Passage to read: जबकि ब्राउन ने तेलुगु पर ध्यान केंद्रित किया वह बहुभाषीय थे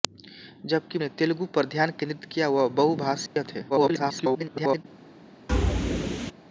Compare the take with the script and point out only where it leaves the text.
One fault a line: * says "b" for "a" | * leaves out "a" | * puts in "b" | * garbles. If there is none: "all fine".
* leaves out "ब्राउन"
* garbles